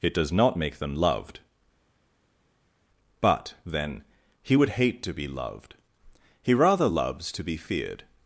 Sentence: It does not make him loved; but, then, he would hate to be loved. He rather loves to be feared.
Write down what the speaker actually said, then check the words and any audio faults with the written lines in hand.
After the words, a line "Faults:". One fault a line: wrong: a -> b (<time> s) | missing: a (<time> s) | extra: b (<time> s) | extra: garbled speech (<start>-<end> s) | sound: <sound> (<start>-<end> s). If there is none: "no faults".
It does not make them loved; but, then, he would hate to be loved. He rather loves to be feared.
Faults:
wrong: him -> them (0.8 s)